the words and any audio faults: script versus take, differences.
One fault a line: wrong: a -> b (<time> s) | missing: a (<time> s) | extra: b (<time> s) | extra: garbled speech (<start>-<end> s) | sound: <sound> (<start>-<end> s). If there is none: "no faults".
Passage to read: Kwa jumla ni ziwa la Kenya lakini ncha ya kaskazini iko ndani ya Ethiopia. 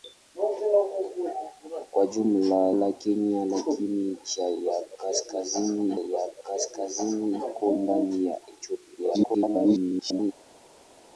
missing: ni ziwa (2.7 s)
extra: ya kaskazini (6.0 s)
extra: garbled speech (9.0-10.3 s)